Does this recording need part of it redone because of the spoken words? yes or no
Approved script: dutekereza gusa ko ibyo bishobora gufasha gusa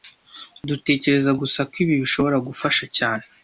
yes